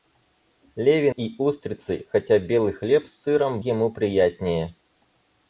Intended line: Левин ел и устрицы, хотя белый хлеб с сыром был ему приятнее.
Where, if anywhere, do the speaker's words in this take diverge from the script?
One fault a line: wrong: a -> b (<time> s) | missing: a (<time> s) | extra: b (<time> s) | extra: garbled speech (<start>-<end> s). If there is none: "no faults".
missing: ел (1.1 s)
missing: был (3.6 s)